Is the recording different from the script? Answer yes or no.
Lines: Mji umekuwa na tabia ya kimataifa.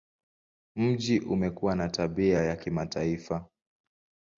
no